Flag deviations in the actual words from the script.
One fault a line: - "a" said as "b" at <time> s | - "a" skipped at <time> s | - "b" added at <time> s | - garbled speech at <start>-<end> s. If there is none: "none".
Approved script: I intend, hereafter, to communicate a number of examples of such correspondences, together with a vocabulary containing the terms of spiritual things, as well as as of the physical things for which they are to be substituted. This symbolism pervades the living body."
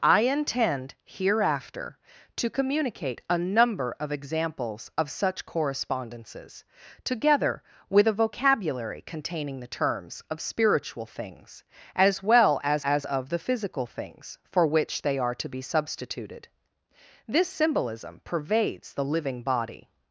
none